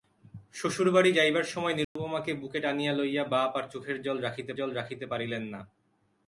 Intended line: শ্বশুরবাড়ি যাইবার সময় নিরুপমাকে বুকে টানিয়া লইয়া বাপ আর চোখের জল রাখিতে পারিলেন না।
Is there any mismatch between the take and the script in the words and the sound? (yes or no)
yes